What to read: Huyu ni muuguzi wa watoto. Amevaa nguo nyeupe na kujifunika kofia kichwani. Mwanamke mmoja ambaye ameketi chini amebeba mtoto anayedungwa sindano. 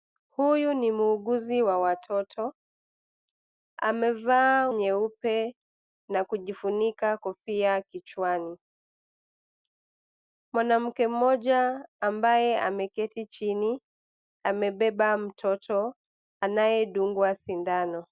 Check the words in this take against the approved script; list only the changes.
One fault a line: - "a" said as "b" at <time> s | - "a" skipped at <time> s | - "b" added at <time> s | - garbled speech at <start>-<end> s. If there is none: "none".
- "nguo" skipped at 4.7 s